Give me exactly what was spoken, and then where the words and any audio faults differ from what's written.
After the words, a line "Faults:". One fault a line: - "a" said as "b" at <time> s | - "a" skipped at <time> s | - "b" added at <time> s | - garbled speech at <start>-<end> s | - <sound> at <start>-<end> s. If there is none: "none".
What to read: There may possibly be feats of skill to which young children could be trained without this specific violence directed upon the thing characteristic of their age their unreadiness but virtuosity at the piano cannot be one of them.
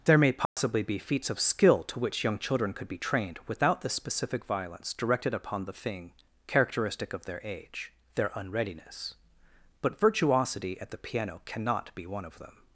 There may possibly be feats of skill to which young children could be trained without the specific violence directed upon the thing characteristic of their age their unreadiness but virtuosity at the piano cannot be one of them.
Faults:
- dropout at 0.5-0.6 s
- "this" said as "the" at 3.8 s